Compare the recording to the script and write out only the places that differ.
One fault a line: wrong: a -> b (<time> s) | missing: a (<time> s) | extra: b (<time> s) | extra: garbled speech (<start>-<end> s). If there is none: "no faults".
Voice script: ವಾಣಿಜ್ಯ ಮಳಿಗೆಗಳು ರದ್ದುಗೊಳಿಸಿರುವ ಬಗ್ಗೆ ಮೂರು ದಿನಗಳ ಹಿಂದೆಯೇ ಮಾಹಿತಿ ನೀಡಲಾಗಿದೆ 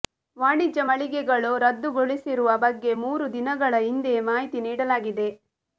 no faults